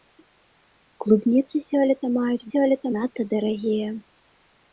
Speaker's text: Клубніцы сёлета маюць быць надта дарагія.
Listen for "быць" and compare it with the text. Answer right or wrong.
wrong